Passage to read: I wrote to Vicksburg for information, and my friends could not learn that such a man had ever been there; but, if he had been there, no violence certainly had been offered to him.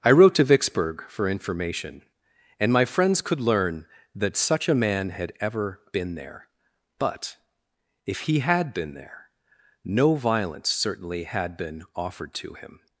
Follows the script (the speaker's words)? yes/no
no